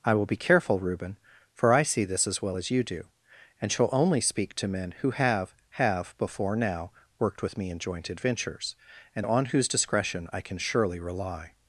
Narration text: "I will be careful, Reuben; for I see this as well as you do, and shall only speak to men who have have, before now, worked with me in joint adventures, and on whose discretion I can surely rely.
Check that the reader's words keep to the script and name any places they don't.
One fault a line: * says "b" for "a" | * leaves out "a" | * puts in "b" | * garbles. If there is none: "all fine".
all fine